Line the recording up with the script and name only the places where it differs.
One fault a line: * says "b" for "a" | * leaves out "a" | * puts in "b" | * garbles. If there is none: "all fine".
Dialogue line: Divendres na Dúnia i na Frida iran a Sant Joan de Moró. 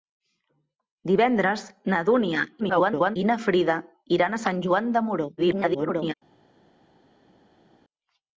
* garbles
* garbles